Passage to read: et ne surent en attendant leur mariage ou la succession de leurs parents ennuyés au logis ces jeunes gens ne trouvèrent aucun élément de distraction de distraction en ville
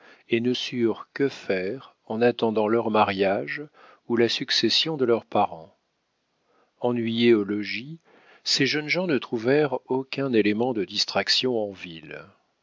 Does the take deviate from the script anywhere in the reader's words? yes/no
yes